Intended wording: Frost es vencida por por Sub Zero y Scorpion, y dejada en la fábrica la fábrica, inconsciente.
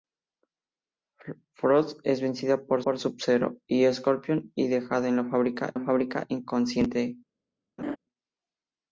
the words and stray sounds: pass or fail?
fail